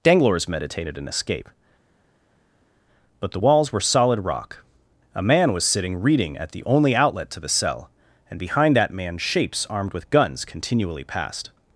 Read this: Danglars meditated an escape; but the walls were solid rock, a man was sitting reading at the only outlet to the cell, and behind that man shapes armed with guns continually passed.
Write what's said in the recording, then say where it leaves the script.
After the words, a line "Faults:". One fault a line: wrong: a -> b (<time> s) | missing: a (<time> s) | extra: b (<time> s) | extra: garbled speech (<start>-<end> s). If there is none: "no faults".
Danglars meditated an escape; but the walls were solid rock, a man was sitting reading at the only outlet to the cell, and behind that man shapes armed with guns continually passed.
Faults:
no faults